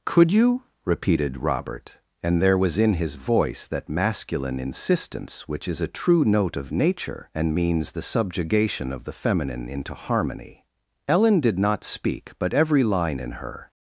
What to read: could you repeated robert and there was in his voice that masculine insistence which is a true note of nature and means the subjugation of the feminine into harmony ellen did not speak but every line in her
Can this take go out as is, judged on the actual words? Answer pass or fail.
pass